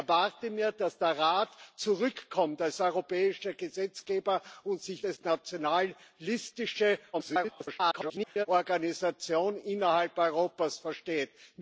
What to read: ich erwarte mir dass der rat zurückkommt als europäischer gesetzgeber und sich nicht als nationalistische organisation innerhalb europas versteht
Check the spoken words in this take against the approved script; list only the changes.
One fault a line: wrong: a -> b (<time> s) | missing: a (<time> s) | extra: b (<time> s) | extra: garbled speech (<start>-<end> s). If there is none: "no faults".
missing: nicht (5.0 s)
extra: garbled speech (7.1-8.5 s)